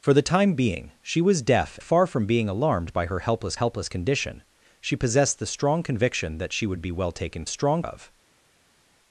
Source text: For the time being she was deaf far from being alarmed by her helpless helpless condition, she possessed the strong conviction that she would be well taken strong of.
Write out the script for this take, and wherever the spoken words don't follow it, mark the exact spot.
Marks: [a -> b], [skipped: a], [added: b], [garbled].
For the time being she was deaf far from being alarmed by her helpless helpless condition, she possessed the strong conviction that she would be well taken strong of.